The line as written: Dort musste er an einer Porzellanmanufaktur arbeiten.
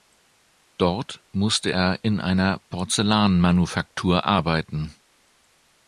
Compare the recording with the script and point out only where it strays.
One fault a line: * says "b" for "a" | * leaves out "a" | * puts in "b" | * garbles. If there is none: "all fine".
* says "in" for "an"